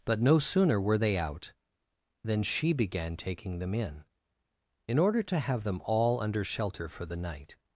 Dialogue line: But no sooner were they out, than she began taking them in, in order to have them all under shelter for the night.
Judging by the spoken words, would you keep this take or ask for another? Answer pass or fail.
pass